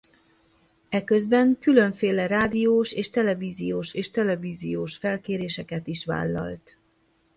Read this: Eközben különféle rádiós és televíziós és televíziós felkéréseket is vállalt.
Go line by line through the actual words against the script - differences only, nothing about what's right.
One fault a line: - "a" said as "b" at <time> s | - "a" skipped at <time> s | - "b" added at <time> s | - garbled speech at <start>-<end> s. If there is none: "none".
none